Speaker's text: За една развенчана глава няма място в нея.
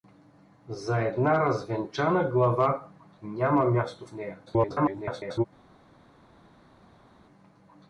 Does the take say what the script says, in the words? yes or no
no